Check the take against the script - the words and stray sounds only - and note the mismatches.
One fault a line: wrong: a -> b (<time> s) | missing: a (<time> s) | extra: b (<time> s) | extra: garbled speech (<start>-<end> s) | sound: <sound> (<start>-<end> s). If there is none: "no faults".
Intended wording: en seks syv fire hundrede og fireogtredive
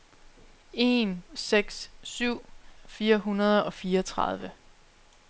no faults